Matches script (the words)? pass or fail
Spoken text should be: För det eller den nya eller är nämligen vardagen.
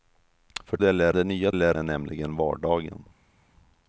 pass